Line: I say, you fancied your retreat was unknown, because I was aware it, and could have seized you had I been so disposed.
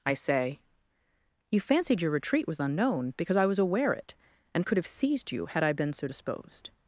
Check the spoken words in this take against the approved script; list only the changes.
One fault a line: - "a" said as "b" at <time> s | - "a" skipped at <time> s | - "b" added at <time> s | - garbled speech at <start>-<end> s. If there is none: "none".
none